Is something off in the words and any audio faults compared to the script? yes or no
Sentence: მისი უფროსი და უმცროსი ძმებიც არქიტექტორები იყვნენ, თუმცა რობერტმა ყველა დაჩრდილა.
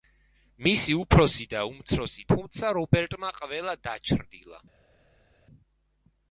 yes